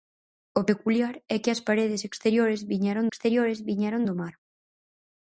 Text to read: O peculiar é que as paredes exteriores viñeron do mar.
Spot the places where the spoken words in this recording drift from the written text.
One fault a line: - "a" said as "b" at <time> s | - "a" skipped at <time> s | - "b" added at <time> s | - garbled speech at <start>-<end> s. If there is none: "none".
- "exteriores viñeron" added at 3.1 s